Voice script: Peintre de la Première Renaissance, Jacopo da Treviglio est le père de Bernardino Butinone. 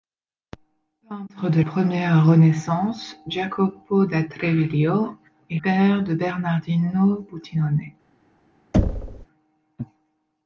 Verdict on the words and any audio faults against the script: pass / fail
fail